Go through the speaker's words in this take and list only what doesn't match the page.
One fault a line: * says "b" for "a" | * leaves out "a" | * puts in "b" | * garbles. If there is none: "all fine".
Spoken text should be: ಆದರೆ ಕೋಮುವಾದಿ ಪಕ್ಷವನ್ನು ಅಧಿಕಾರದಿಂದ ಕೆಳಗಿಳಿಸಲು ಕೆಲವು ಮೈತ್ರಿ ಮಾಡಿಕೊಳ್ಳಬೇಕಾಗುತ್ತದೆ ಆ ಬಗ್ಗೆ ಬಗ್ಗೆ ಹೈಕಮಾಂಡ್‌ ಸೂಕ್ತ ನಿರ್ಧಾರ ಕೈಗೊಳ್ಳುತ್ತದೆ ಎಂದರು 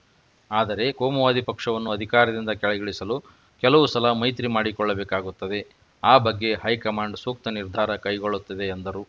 * puts in "ಸಲ"
* leaves out "ಬಗ್ಗೆ"